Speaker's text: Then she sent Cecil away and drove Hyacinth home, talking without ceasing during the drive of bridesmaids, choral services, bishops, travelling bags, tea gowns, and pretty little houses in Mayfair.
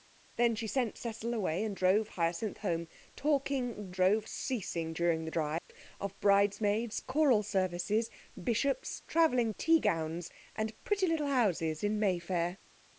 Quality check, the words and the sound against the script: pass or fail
fail